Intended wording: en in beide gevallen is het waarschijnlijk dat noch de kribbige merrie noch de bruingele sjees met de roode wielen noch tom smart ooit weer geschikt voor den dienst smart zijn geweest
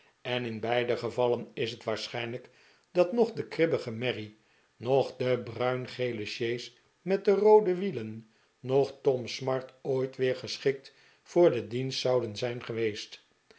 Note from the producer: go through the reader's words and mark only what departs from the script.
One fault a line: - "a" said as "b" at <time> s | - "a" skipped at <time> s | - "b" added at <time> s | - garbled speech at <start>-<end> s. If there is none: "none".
- "smart" said as "zouden" at 12.0 s